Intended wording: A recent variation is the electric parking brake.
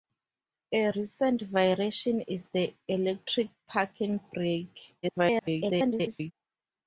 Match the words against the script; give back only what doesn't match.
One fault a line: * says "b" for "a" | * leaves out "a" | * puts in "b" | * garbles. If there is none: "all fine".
* garbles